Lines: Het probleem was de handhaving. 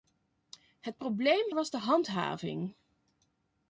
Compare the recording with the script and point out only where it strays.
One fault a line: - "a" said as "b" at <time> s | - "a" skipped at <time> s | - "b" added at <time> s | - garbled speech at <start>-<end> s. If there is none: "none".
none